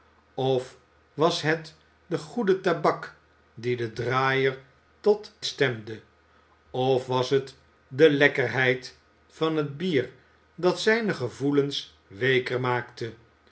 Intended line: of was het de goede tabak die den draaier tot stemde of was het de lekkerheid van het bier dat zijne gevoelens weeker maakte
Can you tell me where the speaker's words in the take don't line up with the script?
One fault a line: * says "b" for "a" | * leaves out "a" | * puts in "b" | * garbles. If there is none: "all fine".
all fine